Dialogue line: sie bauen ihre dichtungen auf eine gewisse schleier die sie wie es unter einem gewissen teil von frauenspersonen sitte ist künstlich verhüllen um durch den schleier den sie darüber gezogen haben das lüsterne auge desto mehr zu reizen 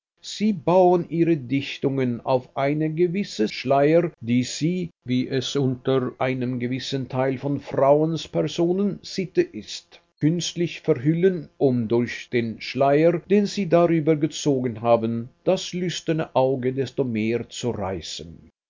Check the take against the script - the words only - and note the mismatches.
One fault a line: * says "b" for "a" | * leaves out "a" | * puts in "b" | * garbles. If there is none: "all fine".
all fine